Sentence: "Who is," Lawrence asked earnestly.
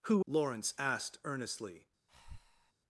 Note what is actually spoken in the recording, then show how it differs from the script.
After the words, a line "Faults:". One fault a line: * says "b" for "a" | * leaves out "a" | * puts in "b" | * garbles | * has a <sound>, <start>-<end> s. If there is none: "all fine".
"Who," Lawrence asked earnestly.
Faults:
* leaves out "is"
* has a breath, 2.1-2.7 s